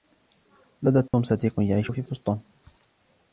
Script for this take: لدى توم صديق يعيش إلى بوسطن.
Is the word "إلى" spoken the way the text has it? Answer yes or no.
no